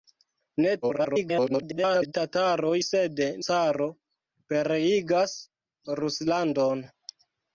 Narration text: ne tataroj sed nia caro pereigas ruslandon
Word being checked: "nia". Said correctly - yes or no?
no